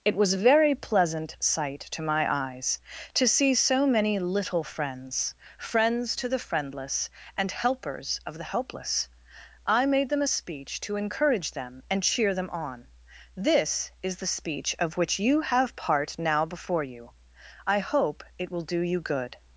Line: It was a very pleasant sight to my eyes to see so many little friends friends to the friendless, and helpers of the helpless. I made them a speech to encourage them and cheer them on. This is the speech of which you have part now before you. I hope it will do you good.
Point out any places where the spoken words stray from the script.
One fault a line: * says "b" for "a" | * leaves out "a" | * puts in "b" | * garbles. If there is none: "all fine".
all fine